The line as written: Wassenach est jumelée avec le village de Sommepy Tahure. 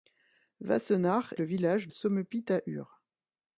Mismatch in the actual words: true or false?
true